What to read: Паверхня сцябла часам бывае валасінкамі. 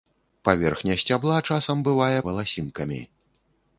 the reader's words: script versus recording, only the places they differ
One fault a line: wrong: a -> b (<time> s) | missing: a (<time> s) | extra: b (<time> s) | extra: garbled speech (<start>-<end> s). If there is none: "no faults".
no faults